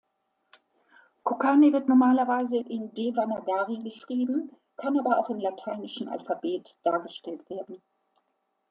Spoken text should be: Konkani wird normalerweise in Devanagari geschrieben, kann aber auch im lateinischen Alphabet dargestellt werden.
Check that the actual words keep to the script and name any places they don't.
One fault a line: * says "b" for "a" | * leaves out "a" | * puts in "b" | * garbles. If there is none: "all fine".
all fine